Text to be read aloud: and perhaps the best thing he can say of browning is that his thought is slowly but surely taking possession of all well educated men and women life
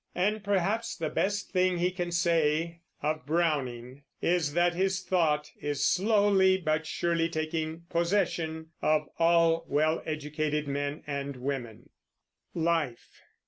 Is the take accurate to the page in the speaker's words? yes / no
yes